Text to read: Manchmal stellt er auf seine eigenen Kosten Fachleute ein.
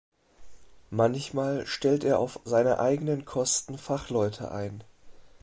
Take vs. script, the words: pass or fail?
pass